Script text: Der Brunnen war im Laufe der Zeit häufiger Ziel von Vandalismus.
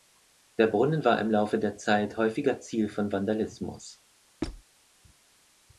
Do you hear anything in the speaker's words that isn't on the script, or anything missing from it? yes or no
no